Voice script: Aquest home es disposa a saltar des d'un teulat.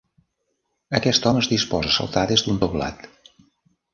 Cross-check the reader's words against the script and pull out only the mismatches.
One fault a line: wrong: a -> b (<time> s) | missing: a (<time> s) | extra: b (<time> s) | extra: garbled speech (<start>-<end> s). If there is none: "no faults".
no faults